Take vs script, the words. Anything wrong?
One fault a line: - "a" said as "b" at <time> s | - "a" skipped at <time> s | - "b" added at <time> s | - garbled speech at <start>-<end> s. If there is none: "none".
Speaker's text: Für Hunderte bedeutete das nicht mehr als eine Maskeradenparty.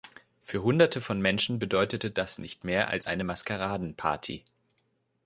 - "von Menschen" added at 1.0 s